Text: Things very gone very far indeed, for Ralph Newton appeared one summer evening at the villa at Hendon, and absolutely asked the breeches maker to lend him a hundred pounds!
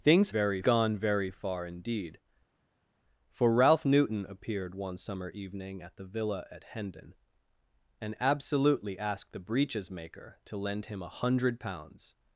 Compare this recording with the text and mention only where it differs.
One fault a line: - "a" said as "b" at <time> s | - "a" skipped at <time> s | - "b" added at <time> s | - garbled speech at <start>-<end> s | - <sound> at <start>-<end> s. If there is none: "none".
none